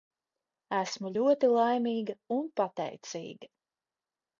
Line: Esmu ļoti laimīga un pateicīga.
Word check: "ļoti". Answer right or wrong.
right